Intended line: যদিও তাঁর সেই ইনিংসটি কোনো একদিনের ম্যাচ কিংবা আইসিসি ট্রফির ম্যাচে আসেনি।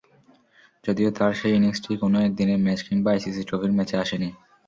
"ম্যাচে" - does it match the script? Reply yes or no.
yes